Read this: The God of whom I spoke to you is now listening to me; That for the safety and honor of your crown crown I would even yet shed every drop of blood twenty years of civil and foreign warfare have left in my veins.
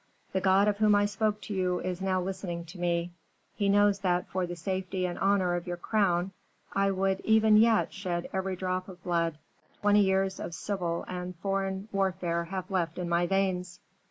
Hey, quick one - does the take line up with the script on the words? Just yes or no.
no